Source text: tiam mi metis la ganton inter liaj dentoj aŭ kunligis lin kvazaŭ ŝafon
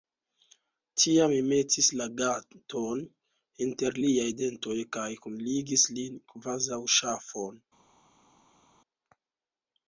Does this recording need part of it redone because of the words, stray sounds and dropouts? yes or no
yes